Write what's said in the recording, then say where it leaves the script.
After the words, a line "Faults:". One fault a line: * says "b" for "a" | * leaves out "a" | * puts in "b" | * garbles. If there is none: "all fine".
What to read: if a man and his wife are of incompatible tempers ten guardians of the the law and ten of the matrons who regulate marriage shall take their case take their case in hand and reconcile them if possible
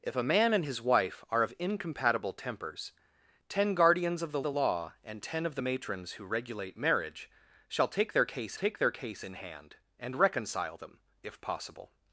if a man and his wife are of incompatible tempers ten guardians of the the law and ten of the matrons who regulate marriage shall take their case take their case in hand and reconcile them if possible
Faults:
all fine